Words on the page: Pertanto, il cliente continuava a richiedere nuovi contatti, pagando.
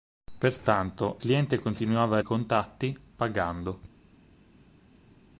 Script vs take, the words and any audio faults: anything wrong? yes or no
yes